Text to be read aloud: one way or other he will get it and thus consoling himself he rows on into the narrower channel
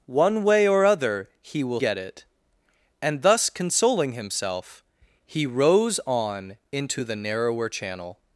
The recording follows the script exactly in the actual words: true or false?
true